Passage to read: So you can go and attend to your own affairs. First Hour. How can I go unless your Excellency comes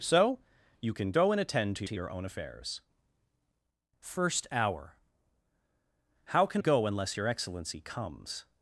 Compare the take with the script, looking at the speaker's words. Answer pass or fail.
fail